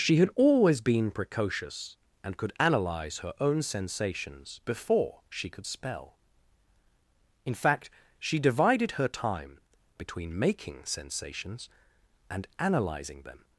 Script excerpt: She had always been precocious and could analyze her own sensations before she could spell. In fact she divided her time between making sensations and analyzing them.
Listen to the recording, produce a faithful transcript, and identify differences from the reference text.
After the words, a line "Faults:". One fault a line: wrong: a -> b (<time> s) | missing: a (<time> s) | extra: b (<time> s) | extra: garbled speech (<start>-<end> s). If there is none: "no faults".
She had always been precocious and could analyze her own sensations before she could spell. In fact she divided her time between making sensations and analyzing them.
Faults:
no faults